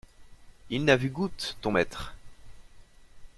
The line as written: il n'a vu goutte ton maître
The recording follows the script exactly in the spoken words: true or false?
true